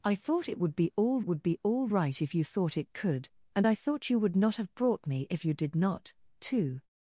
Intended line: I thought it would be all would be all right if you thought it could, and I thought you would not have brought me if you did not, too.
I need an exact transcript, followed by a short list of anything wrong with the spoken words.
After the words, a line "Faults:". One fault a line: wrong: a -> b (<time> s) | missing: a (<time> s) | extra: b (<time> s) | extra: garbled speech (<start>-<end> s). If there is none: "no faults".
I thought it would be all would be all right if you thought it could, and I thought you would not have brought me if you did not, too.
Faults:
no faults